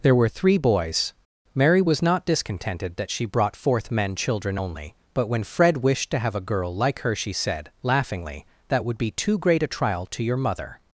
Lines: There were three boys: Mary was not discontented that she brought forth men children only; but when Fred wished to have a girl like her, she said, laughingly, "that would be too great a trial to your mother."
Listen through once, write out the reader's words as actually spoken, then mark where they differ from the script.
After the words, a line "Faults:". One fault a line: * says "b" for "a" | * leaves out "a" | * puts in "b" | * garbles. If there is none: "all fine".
There were three boys: Mary was not discontented that she brought forth men children only; but when Fred wished to have a girl like her, she said, laughingly, "that would be too great a trial to your mother."
Faults:
all fine